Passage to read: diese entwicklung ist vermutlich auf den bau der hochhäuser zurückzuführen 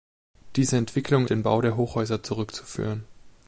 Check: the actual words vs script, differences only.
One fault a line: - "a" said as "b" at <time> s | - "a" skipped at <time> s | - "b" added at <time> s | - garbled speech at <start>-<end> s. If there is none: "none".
- "ist vermutlich auf" skipped at 1.3 s